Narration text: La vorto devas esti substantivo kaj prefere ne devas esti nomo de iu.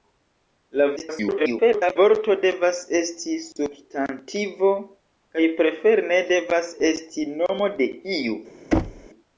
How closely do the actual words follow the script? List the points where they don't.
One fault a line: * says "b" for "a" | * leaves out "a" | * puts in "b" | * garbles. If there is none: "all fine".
* garbles